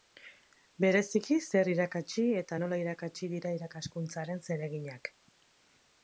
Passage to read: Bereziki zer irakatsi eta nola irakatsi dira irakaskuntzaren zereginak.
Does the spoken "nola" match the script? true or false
true